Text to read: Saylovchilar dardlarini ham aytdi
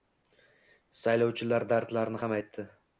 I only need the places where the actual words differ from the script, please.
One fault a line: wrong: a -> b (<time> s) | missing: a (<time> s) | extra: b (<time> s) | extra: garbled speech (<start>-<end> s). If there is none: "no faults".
no faults